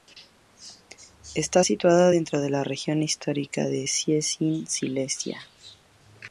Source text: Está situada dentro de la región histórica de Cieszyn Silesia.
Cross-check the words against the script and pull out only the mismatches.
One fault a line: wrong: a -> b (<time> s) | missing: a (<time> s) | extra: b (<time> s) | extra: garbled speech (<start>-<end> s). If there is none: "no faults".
no faults